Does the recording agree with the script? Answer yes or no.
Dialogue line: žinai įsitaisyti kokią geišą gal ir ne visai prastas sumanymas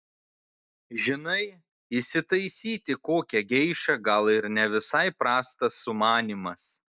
yes